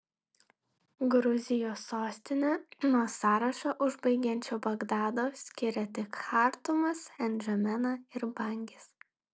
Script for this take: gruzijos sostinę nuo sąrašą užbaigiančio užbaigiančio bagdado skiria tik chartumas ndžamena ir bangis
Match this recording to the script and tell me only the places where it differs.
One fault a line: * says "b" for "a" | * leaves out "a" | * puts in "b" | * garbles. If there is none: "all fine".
* leaves out "užbaigiančio"